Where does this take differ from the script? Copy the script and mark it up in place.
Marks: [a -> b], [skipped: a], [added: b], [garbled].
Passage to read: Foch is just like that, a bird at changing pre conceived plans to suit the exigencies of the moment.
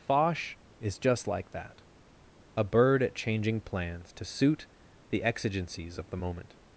Foch is just like that, a bird at changing [skipped: pre conceived] plans to suit the exigencies of the moment.